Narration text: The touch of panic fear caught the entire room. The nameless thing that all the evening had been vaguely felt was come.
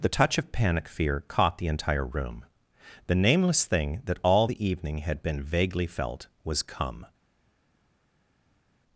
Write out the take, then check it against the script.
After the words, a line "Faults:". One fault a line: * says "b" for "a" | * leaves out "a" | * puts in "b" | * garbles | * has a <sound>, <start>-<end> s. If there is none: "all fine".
The touch of panic fear caught the entire room. The nameless thing that all the evening had been vaguely felt was come.
Faults:
all fine